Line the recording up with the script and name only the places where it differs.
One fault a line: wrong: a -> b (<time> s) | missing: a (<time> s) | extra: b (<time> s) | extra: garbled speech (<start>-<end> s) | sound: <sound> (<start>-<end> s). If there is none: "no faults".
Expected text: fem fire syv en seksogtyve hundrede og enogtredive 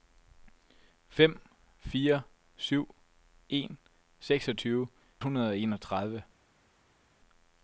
no faults